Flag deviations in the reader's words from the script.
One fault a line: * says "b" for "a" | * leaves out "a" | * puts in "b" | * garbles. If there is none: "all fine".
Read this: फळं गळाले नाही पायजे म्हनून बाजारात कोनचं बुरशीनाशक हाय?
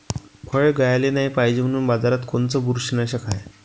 all fine